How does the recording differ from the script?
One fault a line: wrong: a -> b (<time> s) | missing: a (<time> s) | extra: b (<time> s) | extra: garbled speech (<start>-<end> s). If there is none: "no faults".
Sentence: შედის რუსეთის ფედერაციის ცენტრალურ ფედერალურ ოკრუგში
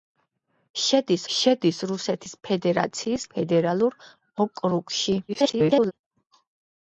extra: შედის (1.4 s)
missing: ცენტრალურ (3.3 s)
extra: garbled speech (5.3-5.9 s)